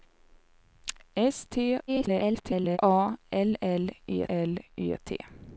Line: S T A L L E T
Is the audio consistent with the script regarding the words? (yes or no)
no